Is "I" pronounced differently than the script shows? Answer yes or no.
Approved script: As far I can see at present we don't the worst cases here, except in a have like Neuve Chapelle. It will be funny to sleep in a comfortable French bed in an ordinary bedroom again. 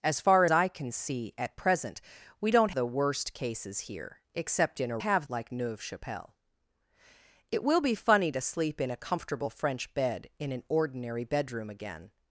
no